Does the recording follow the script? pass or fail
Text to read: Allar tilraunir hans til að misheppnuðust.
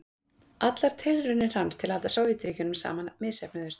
fail